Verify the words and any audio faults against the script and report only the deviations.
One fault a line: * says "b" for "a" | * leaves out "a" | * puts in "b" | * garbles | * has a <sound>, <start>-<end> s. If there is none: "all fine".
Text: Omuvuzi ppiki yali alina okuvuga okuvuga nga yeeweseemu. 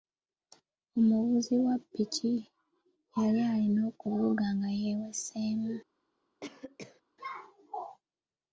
* puts in "wa"
* leaves out "okuvuga"
* has a cough, 6.4-7.0 s